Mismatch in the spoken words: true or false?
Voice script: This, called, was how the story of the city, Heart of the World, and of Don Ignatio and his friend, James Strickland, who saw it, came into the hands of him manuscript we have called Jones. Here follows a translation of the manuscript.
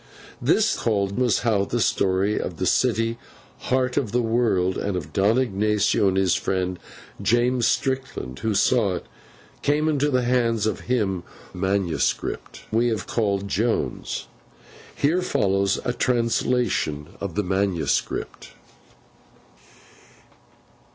false